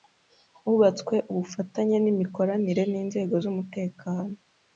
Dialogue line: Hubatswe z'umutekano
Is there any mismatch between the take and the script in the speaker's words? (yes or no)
yes